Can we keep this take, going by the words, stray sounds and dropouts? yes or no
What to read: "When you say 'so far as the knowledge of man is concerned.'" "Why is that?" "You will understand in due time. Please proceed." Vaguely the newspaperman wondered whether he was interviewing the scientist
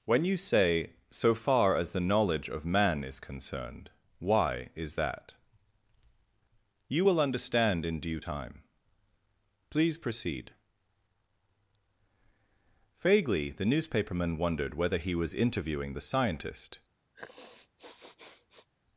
no